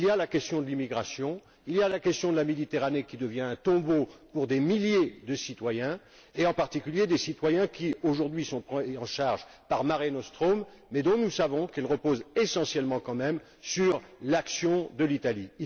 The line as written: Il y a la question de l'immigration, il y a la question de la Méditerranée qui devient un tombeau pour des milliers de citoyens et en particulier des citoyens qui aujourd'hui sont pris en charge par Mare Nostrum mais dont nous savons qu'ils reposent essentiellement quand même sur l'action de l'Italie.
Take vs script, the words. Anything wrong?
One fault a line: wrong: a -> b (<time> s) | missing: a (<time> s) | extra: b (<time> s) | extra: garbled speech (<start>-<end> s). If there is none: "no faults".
no faults